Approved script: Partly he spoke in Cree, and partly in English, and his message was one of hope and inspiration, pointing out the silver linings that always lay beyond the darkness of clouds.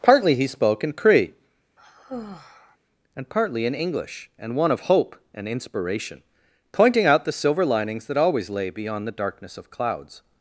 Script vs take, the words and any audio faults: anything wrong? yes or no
yes